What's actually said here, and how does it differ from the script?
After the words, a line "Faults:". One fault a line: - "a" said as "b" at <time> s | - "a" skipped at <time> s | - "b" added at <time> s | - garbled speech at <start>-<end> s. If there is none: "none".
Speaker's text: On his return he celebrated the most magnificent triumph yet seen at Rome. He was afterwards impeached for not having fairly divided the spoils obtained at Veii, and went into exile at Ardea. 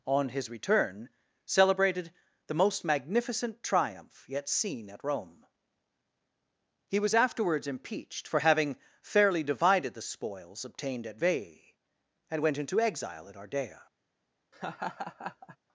On his return celebrated the most magnificent triumph yet seen at Rome. He was afterwards impeached for having fairly divided the spoils obtained at Veii, and went into exile at Ardea.
Faults:
- "he" skipped at 1.1 s
- "not" skipped at 8.4 s